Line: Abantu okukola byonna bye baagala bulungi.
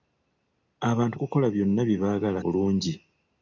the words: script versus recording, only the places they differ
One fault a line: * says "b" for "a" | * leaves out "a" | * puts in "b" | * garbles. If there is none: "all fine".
all fine